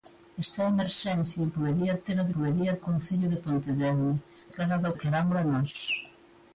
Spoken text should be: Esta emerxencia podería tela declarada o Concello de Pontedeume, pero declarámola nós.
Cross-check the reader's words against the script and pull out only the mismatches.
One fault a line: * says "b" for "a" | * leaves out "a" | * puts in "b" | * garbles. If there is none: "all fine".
* says "podería" for "declarada"
* says "declarada" for "pero"